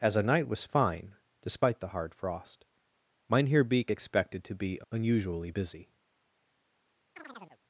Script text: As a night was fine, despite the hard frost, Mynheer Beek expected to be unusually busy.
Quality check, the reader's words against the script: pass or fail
pass